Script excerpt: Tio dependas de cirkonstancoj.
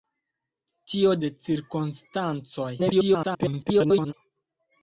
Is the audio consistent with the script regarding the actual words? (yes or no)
no